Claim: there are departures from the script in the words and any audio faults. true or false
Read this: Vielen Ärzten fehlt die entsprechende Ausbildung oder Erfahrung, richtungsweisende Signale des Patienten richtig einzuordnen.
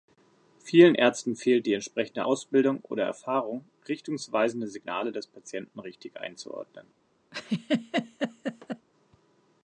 true